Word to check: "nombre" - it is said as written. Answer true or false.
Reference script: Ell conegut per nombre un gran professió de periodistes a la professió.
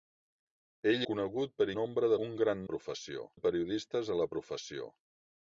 true